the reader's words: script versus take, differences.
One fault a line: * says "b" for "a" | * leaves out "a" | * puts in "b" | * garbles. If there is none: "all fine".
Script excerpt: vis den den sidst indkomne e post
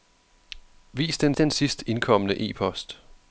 all fine